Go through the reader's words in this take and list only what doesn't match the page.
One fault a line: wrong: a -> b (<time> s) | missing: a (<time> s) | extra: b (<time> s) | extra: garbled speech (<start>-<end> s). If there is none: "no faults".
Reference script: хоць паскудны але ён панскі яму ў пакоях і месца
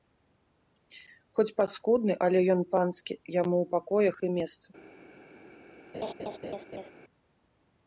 no faults